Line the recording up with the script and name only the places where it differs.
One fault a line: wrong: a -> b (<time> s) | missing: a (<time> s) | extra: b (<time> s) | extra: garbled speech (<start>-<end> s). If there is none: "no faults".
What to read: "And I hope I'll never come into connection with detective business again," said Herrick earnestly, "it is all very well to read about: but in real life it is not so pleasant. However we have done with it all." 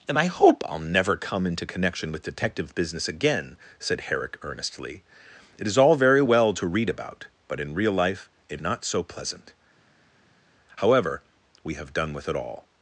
missing: is (8.6 s)